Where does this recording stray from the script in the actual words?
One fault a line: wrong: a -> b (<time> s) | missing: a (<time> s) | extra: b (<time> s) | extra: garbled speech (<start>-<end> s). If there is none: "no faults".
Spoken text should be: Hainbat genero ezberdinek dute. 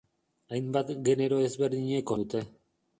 no faults